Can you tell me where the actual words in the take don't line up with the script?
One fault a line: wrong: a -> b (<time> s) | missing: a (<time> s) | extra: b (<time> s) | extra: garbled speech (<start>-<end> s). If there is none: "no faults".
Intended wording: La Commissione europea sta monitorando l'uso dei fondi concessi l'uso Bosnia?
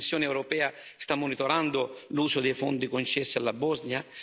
wrong: l'uso -> alla (3.4 s)